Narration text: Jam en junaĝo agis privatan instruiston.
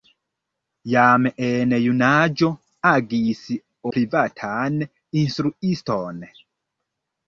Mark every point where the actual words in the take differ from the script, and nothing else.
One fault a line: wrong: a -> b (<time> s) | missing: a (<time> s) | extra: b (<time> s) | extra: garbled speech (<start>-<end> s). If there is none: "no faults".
no faults